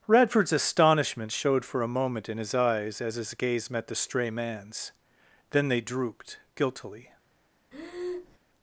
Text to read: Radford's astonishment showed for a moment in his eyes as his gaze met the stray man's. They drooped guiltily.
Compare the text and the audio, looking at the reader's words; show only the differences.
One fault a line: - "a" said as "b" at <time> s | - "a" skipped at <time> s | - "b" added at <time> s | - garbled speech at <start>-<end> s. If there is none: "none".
- "Then" added at 5.5 s